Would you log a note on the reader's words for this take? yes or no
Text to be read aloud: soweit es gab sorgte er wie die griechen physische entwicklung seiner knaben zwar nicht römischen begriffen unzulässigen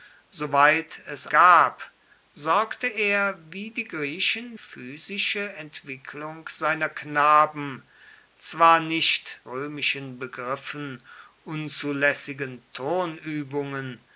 no